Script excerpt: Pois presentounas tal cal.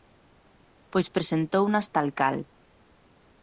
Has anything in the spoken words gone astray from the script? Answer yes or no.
no